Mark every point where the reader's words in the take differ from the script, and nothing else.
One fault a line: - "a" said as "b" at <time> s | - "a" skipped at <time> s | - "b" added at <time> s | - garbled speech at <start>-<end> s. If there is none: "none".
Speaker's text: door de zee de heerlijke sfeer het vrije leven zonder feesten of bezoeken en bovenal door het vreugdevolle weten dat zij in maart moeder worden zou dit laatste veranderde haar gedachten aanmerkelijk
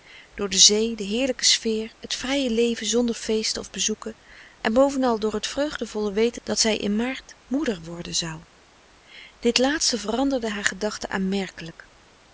none